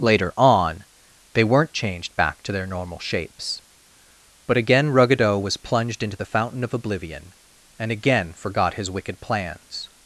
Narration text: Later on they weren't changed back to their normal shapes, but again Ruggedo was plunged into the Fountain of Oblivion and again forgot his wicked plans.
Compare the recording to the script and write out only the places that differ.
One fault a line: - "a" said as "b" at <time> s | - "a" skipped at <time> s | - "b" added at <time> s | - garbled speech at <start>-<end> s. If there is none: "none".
none